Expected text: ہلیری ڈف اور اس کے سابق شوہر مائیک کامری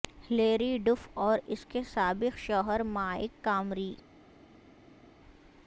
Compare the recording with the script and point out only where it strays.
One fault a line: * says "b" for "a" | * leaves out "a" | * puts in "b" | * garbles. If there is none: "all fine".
all fine